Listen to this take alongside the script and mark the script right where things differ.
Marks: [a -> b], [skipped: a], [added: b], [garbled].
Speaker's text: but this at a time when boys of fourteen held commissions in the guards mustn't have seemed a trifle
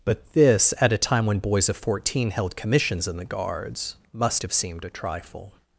but this at a time when boys of fourteen held commissions in the guards [mustn't -> must] have seemed a trifle